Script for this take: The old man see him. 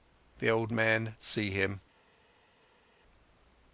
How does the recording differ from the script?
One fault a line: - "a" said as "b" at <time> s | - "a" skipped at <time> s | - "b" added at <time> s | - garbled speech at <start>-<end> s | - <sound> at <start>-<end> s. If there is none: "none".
none